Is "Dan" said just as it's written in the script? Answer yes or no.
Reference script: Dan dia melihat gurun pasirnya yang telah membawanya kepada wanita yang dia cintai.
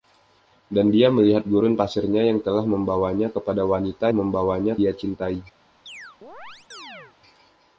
yes